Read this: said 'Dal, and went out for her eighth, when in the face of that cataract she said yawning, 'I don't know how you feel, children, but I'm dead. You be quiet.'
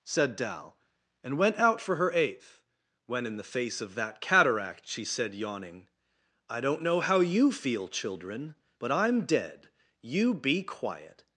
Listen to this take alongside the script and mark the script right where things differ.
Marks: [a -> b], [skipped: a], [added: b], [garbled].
said 'Dal, and went out for her eighth, when in the face of that cataract she said yawning, 'I don't know how you feel, children, but I'm dead. You be quiet.'